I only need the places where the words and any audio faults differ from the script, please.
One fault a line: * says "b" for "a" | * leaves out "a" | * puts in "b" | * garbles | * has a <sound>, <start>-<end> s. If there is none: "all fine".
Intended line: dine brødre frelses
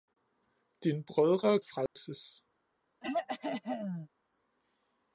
* has a dropout, 1.9-2.0 s
* has a throat clearing, 3.0-4.1 s